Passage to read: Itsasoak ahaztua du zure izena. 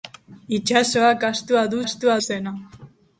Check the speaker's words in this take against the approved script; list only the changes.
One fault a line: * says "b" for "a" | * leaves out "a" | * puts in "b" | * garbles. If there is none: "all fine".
* says "ahaztua" for "zure"